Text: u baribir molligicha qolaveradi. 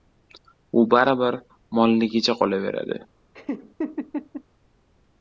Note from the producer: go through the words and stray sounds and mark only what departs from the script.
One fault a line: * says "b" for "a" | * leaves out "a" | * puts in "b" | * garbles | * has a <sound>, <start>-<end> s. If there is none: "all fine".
* has a laugh, 3.3-4.4 s